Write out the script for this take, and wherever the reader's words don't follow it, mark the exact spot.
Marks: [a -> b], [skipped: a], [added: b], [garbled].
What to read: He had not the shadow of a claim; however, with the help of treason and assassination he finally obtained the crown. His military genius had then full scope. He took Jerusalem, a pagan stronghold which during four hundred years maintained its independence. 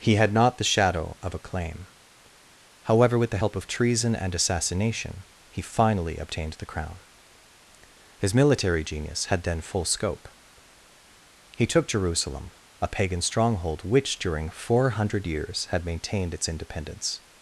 He had not the shadow of a claim; however, with the help of treason and assassination he finally obtained the crown. His military genius had then full scope. He took Jerusalem, a pagan stronghold which during four hundred years [added: had] maintained its independence.